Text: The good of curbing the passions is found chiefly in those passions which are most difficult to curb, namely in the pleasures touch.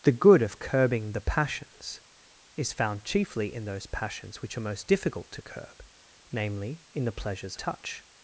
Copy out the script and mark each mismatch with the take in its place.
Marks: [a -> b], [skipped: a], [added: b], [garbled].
The good of curbing the passions is found chiefly in those passions which are most difficult to curb, namely in the pleasures touch.